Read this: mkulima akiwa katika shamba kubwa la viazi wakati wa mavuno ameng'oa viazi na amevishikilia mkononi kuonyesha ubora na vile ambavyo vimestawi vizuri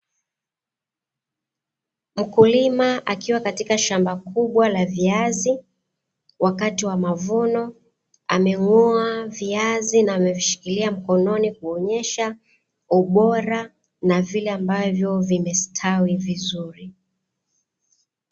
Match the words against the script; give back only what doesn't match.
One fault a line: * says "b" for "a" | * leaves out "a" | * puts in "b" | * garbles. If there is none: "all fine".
all fine